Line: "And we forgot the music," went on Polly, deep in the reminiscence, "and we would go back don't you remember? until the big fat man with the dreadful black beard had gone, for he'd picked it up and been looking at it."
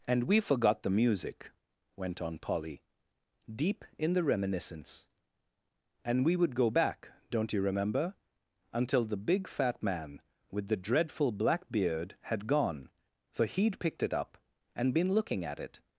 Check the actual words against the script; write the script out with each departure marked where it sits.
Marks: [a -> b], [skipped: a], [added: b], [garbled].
"And we forgot the music," went on Polly, deep in the reminiscence, "and we would go back don't you remember? until the big fat man with the dreadful black beard had gone, for he'd picked it up and been looking at it."